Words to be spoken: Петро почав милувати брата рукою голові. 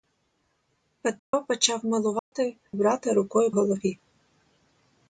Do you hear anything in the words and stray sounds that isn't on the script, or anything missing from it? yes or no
yes